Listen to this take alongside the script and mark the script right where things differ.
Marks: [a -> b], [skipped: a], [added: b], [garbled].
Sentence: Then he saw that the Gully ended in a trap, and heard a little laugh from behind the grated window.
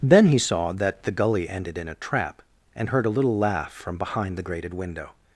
Then he saw that the Gully ended in a trap, and heard a little laugh from behind the grated window.